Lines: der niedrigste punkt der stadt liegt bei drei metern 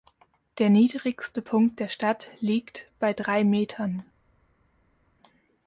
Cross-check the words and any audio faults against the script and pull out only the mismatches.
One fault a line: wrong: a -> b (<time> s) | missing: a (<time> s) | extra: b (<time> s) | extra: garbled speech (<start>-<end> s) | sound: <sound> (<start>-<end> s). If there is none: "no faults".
no faults